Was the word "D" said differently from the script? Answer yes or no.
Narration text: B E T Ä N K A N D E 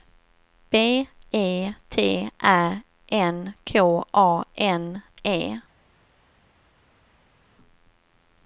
yes